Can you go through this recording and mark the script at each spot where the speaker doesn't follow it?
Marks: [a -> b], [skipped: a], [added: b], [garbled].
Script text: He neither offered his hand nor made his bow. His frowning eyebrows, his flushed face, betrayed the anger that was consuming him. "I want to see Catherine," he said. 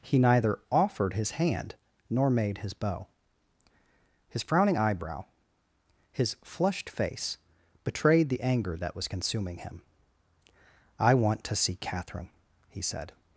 He neither offered his hand nor made his bow. His frowning [eyebrows, -> eyebrow] his flushed face, betrayed the anger that was consuming him. "I want to see Catherine," he said.